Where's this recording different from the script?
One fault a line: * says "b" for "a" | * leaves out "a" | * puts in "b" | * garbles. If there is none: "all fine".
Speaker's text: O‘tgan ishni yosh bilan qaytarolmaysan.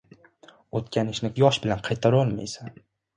all fine